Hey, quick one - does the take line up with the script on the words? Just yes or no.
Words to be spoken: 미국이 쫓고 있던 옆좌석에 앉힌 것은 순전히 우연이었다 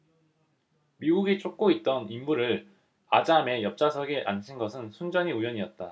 no